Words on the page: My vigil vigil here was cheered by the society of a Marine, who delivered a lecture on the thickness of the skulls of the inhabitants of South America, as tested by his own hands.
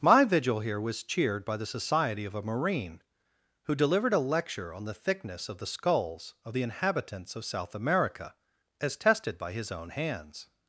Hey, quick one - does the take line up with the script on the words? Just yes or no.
no